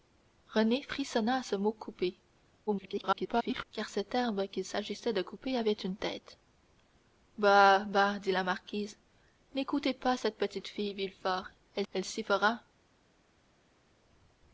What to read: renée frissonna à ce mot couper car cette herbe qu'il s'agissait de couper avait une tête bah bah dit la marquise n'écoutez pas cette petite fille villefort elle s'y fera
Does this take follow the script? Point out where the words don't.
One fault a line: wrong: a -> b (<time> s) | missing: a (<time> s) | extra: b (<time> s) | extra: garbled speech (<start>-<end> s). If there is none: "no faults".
extra: garbled speech (2.7-3.6 s)
extra: elle (11.9 s)